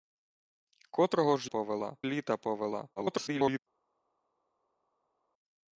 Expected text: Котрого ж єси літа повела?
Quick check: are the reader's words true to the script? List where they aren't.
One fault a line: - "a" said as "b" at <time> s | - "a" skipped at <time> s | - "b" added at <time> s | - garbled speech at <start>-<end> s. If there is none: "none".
- "єси" said as "повела" at 1.4 s
- garbled speech at 3.0-3.6 s